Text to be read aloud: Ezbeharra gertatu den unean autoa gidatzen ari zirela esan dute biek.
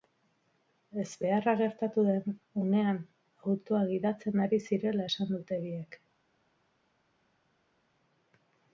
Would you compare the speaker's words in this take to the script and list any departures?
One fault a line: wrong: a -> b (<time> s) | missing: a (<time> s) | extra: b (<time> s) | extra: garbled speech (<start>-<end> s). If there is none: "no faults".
no faults